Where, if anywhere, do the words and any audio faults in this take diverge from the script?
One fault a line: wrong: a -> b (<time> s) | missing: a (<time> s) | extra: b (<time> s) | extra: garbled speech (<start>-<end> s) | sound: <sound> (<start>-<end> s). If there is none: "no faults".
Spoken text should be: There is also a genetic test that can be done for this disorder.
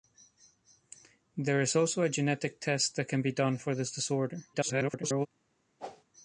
extra: garbled speech (4.5-5.3 s)
sound: whoosh (5.8-6.0 s)